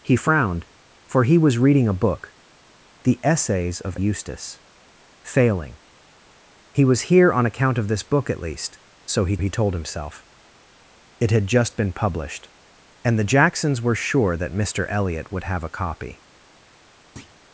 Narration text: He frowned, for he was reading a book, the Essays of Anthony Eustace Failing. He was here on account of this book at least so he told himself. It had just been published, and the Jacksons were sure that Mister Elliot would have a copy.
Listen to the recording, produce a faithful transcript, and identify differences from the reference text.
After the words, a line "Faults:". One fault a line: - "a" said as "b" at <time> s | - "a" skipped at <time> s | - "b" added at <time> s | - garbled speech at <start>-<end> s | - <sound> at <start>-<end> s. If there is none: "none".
He frowned, for he was reading a book, the Essays of Eustace Failing. He was here on account of this book at least so he he told himself. It had just been published, and the Jacksons were sure that Mister Elliot would have a copy.
Faults:
- "Anthony" skipped at 4.0 s
- "he" added at 9.4 s
- thud at 17.2-17.4 s